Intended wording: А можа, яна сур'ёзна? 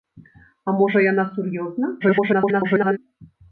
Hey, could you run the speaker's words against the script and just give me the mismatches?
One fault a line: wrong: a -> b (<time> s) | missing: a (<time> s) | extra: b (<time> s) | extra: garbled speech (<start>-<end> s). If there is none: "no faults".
extra: garbled speech (2.0-3.0 s)